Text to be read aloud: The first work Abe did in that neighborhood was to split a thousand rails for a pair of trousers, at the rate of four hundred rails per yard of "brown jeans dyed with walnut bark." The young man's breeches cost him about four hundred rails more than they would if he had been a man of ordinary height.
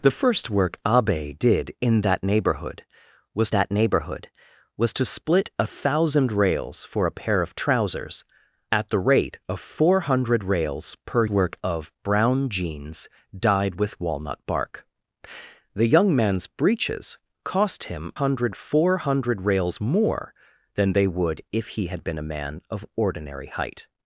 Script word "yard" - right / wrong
wrong